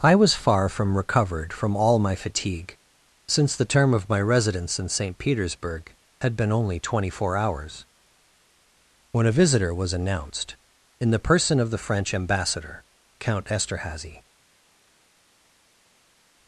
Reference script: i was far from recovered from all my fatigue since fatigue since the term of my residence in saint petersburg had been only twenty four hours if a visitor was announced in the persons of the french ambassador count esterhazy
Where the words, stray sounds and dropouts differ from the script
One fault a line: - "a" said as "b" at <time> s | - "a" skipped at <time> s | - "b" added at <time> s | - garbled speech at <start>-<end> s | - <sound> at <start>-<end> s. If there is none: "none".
- "fatigue since" skipped at 3.5 s
- "if" said as "when" at 9.1 s
- "persons" said as "person" at 11.2 s